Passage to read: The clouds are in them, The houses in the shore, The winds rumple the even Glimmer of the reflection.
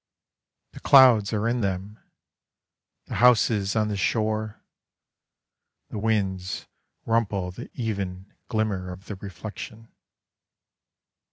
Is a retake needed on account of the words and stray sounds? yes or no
yes